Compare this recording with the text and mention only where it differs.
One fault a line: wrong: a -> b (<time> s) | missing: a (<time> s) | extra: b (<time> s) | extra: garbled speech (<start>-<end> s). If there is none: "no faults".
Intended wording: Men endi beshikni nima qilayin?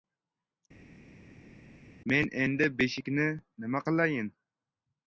no faults